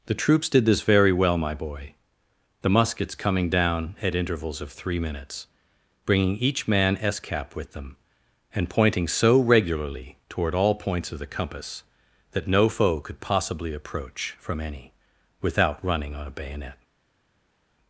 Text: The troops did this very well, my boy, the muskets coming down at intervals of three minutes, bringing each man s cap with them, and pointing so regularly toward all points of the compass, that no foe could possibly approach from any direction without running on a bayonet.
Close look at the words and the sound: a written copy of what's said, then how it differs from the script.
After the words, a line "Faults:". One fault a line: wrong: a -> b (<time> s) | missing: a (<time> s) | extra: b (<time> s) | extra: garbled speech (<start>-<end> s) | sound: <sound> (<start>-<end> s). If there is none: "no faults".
The troops did this very well, my boy, the muskets coming down at intervals of three minutes, bringing each man s cap with them, and pointing so regularly toward all points of the compass, that no foe could possibly approach from any without running on a bayonet.
Faults:
missing: direction (14.9 s)